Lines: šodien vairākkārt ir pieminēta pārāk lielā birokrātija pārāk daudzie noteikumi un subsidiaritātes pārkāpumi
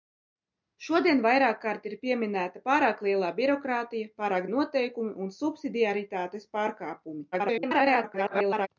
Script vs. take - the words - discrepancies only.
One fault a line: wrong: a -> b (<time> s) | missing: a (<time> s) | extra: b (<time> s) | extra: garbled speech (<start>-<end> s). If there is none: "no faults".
missing: daudzie (4.5 s)
extra: garbled speech (7.3-8.7 s)